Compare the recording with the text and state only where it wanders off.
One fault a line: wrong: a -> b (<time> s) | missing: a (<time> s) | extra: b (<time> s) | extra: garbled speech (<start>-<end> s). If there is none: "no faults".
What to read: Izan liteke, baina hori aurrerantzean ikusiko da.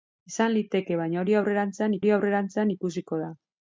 extra: hori aurrerantzean (2.0 s)